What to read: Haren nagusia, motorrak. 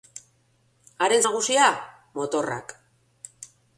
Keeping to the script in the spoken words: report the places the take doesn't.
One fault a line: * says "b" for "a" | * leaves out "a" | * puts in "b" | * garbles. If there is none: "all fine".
all fine